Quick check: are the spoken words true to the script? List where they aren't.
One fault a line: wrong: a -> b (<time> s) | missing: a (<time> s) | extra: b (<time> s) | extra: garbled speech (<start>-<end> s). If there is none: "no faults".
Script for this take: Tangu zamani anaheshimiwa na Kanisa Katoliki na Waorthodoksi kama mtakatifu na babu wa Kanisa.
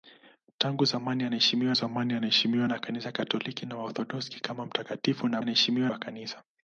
extra: zamani anaheshimiwa (1.7 s)
wrong: babu -> anaheshimiwa (5.4 s)